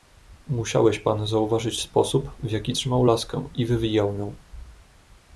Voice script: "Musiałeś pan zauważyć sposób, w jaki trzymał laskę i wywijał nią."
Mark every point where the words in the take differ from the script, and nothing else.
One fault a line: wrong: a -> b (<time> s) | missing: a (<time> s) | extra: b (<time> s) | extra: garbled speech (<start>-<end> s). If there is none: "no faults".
no faults